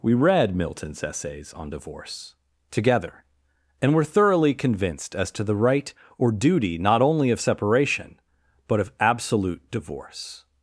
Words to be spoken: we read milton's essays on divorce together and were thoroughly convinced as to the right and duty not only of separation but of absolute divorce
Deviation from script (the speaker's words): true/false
true